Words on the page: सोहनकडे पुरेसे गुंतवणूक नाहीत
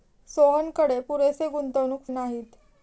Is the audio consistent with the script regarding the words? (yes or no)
yes